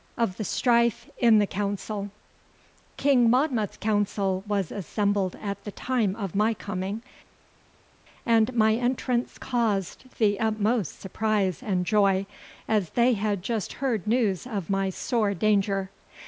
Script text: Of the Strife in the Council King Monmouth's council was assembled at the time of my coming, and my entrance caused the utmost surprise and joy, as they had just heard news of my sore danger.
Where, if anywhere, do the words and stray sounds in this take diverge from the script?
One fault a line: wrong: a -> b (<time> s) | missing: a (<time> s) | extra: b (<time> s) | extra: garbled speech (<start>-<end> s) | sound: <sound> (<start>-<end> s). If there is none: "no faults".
no faults